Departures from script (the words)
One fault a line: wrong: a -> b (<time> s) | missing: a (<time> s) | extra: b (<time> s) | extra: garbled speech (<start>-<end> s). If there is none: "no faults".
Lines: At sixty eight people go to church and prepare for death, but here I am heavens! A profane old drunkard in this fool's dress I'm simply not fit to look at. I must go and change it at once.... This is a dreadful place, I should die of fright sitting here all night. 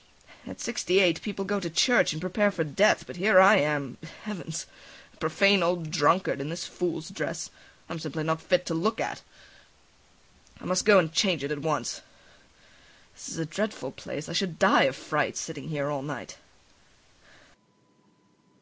no faults